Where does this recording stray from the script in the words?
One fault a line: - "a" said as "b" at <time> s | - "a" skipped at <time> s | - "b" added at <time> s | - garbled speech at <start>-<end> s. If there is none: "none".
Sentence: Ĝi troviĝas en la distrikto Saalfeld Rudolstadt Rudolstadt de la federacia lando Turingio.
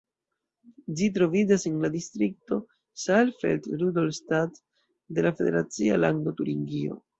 - "Rudolstadt" skipped at 4.6 s